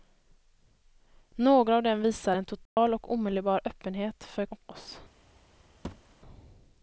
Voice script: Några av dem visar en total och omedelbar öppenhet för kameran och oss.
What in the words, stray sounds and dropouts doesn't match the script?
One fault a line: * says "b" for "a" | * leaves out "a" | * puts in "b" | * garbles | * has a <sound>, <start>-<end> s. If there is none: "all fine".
* has a dropout, 2.7-2.8 s
* leaves out "kameran"
* has a thud, 5.8-6.2 s